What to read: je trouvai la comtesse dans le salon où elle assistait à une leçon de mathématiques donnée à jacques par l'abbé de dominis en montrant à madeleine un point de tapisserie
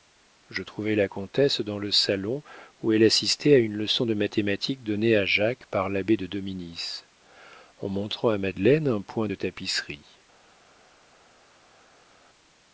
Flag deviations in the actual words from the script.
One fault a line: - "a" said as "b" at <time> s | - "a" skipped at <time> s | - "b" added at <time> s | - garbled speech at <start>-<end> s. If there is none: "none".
none